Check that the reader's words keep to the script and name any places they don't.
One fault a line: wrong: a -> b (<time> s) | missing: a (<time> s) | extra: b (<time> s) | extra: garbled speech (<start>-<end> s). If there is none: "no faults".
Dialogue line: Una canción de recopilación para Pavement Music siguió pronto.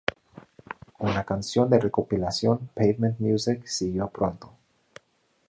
missing: para (2.6 s)